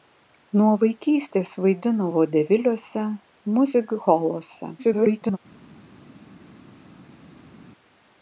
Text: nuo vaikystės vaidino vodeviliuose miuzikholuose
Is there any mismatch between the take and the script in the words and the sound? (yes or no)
yes